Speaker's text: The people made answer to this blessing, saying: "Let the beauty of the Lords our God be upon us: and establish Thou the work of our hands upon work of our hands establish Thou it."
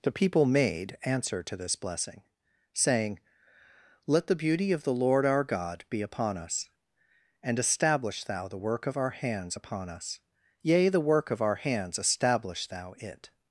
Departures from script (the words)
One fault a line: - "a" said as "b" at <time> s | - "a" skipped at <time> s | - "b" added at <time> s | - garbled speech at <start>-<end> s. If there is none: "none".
- "Lords" said as "Lord" at 5.0 s
- "us yea the" added at 9.9 s